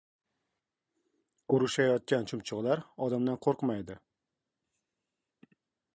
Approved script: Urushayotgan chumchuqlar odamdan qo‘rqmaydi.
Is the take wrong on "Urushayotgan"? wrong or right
right